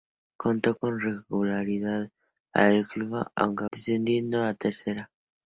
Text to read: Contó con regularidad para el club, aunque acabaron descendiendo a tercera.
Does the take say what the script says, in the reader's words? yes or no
no